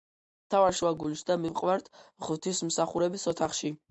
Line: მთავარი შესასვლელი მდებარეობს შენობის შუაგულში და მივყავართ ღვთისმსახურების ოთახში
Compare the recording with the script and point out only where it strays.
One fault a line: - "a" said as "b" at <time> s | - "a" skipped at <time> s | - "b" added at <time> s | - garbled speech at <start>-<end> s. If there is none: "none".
- "შესასვლელი მდებარეობს შენობის" skipped at 0.8 s